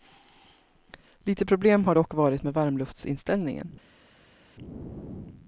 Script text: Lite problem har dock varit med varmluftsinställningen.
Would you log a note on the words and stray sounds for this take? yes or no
no